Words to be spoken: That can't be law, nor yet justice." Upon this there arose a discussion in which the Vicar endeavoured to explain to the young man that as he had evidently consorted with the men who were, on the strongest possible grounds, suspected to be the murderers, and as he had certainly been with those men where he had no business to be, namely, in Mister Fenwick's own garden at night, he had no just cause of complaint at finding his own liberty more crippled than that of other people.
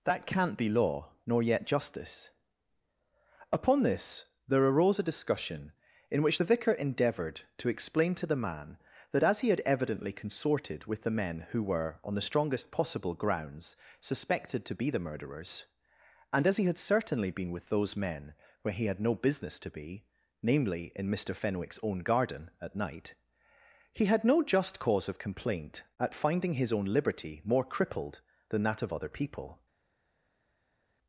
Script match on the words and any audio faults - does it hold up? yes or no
no